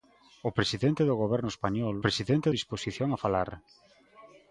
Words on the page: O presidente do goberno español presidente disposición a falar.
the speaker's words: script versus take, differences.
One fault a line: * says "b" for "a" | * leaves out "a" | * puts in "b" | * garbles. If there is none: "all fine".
all fine